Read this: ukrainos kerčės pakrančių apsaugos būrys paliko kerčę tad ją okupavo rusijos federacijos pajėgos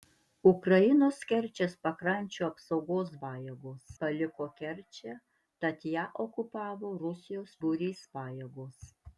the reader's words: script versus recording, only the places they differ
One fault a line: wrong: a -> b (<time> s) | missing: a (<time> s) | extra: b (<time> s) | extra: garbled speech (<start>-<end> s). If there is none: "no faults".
wrong: būrys -> pajėgos (3.2 s)
wrong: federacijos -> būrys (7.6 s)